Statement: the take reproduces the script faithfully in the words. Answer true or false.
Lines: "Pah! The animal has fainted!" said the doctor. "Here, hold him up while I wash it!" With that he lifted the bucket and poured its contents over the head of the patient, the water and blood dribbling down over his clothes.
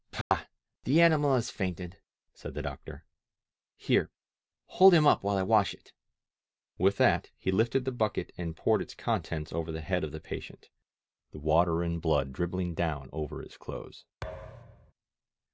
true